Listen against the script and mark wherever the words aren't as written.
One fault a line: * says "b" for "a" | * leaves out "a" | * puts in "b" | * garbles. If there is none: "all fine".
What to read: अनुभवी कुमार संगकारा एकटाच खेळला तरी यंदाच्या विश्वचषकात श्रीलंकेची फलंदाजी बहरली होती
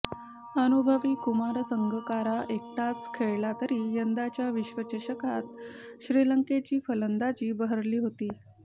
all fine